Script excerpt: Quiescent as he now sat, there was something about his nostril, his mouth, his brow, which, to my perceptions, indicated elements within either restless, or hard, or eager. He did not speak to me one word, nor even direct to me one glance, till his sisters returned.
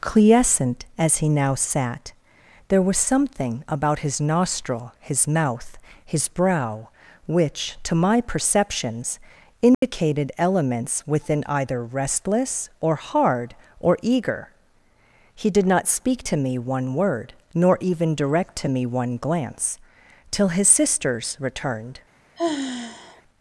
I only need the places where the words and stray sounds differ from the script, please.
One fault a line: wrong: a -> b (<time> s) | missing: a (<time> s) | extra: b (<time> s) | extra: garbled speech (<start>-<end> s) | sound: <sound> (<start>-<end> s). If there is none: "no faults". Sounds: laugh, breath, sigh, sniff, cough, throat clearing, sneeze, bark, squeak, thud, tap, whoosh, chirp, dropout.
sound: dropout (9.7-9.8 s)
sound: sigh (22.4-23.2 s)